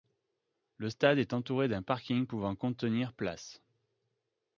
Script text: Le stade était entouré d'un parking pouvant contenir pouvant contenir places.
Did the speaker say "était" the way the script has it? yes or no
no